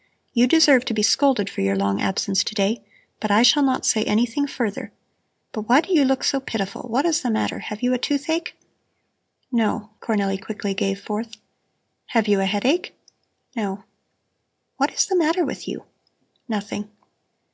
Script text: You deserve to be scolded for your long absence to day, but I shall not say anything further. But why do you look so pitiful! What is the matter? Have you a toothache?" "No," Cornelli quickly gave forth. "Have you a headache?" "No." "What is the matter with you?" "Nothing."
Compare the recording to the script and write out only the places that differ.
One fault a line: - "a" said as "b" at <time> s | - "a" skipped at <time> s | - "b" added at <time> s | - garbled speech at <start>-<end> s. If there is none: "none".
none